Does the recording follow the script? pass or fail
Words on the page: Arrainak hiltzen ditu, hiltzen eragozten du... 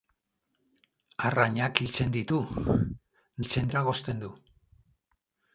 pass